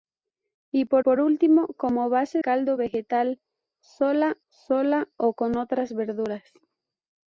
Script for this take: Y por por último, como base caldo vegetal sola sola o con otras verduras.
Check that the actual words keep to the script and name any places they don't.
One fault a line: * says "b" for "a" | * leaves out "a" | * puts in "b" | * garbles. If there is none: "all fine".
all fine